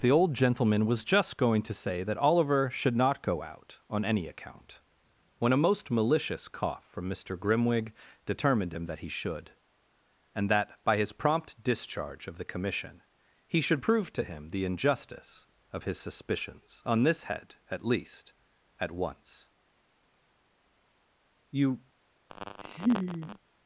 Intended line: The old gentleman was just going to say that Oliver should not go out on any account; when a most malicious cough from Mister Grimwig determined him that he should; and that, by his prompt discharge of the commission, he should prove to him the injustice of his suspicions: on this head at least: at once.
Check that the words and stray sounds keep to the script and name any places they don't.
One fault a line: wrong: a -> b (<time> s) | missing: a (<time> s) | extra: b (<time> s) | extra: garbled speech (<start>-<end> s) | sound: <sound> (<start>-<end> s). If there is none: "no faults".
extra: You (21.5 s)
sound: laugh (22.3-23.4 s)